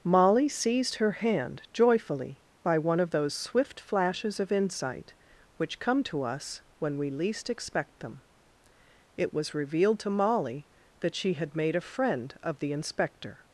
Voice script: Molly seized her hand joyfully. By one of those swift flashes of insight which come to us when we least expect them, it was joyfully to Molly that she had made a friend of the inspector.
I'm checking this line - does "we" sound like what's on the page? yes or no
yes